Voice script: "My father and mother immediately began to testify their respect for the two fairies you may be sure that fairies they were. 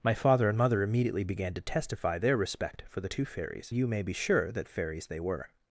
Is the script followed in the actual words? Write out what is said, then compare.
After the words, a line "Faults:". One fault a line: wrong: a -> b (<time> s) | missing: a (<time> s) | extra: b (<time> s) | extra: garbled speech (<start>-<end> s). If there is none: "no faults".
"My father and mother immediately began to testify their respect for the two fairies you may be sure that fairies they were.
Faults:
no faults